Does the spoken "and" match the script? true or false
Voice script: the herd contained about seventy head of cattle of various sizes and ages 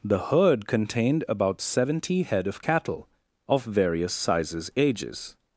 false